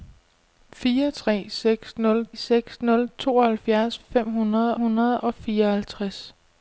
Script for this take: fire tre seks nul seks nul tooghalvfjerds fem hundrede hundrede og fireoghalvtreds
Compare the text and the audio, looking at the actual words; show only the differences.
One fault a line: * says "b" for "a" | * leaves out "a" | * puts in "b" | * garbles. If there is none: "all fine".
all fine